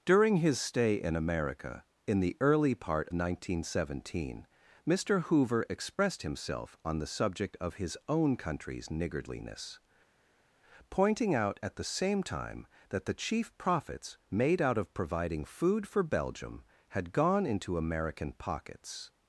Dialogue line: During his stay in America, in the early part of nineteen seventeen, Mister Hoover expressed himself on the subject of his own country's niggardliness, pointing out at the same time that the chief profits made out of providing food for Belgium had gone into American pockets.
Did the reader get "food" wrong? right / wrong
right